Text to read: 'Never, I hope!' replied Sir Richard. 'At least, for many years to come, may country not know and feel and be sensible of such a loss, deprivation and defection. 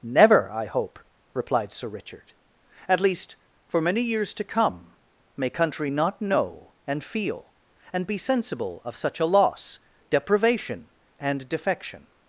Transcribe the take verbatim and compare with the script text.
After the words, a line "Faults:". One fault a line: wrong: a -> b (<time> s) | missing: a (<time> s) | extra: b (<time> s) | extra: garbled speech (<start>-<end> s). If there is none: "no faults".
'Never, I hope!' replied Sir Richard. 'At least, for many years to come, may country not know and feel and be sensible of such a loss, deprivation and defection.
Faults:
no faults